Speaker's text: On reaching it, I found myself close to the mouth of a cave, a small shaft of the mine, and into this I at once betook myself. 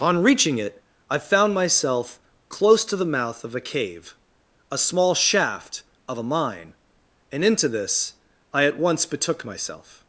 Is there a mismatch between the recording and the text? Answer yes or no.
yes